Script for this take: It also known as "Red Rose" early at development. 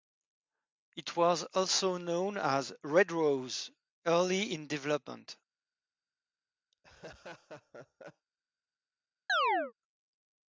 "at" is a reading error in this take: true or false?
true